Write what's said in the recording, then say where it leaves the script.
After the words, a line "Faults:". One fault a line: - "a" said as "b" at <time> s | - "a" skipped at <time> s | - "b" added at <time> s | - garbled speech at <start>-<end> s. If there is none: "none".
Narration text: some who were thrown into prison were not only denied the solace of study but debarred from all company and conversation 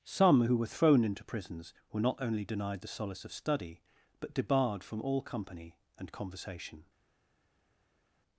some who were thrown into prisons were not only denied the solace of study but debarred from all company and conversation
Faults:
- "prison" said as "prisons" at 1.2 s